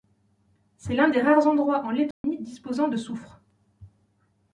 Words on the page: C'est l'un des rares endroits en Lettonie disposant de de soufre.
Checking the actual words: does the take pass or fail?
pass